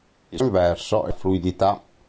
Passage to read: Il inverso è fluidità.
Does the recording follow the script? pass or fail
pass